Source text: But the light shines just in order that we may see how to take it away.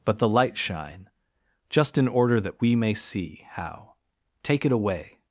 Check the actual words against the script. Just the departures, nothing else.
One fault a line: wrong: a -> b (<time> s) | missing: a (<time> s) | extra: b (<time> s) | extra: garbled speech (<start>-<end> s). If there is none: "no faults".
wrong: shines -> shine (0.6 s)
missing: to (3.9 s)